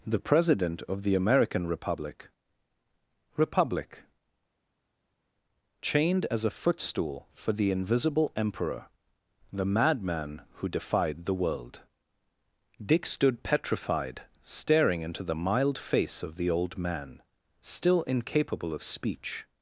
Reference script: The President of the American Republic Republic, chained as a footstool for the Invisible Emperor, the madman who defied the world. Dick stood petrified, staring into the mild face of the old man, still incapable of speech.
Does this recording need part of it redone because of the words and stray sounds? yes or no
no